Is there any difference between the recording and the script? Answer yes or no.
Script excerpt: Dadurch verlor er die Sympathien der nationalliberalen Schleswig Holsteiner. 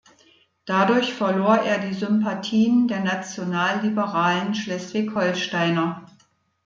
no